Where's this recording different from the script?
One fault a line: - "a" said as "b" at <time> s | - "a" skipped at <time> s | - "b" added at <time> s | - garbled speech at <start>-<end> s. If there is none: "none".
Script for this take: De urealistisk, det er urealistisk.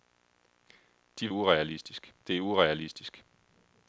none